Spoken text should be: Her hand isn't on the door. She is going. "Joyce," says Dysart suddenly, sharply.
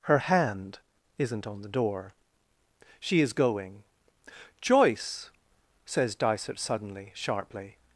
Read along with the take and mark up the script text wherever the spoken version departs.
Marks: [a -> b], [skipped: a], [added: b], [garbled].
Her hand isn't on the door. She is going. "Joyce," says Dysart suddenly, sharply.